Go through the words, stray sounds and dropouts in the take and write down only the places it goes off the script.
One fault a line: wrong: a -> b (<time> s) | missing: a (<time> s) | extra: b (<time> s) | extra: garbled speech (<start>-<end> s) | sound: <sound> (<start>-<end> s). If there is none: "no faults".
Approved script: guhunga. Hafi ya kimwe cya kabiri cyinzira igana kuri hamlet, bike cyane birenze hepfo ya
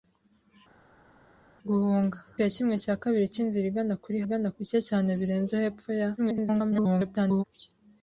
missing: Hafi (2.2 s)
wrong: hamlet -> igana (4.2 s)
extra: garbled speech (6.2-7.4 s)